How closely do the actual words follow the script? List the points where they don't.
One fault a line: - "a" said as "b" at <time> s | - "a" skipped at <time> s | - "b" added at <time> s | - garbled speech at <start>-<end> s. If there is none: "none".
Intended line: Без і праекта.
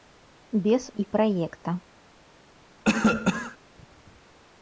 none